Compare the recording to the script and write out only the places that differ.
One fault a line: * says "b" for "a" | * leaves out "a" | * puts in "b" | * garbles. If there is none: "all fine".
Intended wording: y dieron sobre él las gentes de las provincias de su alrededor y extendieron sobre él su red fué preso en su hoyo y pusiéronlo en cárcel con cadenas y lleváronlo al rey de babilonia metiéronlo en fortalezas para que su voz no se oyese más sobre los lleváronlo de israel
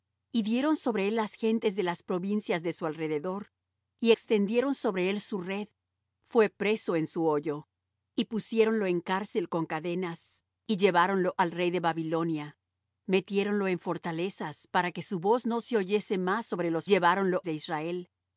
all fine